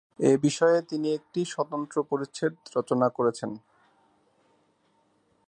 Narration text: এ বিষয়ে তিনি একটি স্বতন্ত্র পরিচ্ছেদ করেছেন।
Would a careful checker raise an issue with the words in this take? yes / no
yes